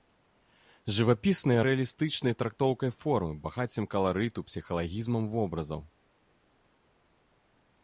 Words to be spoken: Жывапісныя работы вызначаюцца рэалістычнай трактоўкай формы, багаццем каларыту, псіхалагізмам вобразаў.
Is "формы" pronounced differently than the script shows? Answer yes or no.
no